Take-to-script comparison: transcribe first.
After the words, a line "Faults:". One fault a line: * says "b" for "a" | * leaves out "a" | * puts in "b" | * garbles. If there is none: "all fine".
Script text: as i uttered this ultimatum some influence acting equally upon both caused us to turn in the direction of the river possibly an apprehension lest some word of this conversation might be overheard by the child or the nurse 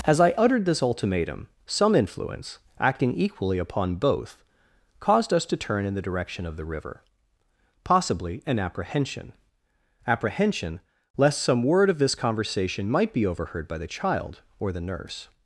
as i uttered this ultimatum some influence acting equally upon both caused us to turn in the direction of the river possibly an apprehension apprehension lest some word of this conversation might be overheard by the child or the nurse
Faults:
* puts in "apprehension"